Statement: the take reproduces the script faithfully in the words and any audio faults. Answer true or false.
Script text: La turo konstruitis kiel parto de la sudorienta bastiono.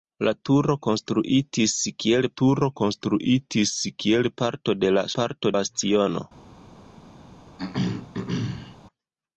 false